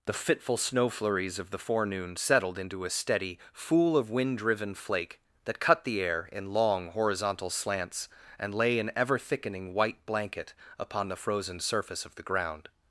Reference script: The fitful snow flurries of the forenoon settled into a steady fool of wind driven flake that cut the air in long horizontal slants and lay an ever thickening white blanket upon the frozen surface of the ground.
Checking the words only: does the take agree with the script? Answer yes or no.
yes